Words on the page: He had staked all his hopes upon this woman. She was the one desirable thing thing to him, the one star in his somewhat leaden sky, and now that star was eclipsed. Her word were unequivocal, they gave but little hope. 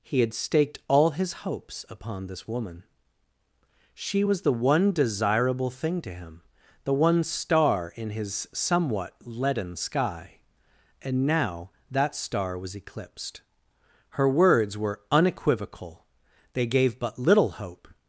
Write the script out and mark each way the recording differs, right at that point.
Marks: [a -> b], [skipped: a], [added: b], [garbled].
He had staked all his hopes upon this woman. She was the one desirable thing [skipped: thing] to him, the one star in his somewhat leaden sky, and now that star was eclipsed. Her [word -> words] were unequivocal, they gave but little hope.